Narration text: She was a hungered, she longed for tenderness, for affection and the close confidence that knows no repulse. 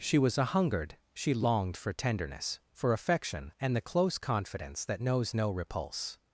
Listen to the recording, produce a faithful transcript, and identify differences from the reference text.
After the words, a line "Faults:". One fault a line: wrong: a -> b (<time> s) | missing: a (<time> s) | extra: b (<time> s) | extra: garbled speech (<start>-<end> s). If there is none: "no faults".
She was a hungered, she longed for tenderness, for affection and the close confidence that knows no repulse.
Faults:
no faults